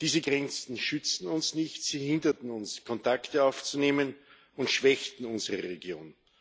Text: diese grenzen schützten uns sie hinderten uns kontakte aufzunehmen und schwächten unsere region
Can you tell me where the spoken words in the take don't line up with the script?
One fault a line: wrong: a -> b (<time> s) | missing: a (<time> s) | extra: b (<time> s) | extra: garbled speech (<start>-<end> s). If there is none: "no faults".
extra: nicht (1.5 s)